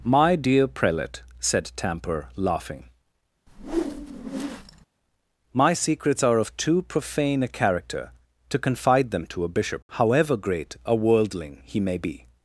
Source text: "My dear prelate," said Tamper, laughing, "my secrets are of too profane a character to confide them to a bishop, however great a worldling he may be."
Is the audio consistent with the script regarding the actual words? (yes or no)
yes